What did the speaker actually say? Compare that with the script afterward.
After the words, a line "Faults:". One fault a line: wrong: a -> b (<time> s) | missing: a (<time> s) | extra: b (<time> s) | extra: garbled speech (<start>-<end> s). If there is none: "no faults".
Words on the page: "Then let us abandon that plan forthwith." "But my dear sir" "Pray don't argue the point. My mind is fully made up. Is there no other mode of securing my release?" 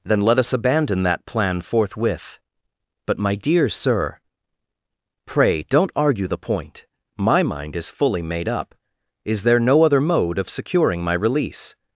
"Then let us abandon that plan forthwith." "But my dear sir" "Pray don't argue the point. My mind is fully made up. Is there no other mode of securing my release?"
Faults:
no faults